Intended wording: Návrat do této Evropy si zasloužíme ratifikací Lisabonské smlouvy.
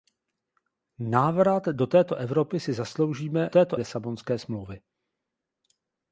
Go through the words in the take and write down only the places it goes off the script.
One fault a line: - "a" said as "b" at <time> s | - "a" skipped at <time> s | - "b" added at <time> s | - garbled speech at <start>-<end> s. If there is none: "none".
- "ratifikací" said as "této" at 3.5 s